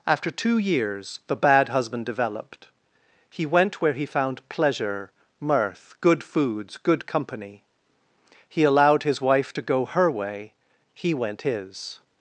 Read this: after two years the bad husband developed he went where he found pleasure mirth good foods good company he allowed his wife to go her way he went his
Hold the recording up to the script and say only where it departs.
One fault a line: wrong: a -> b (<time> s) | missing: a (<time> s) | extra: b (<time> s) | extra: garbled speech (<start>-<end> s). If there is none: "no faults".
no faults